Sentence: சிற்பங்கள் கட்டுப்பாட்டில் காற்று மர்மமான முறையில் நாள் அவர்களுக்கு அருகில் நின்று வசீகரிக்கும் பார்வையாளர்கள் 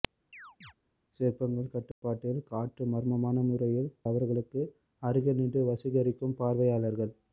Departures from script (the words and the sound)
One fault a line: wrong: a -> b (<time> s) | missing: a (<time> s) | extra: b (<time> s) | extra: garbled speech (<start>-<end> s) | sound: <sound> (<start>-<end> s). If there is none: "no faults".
sound: chirp (0.3-0.7 s)
sound: dropout (1.9-2.0 s)
missing: நாள் (3.9 s)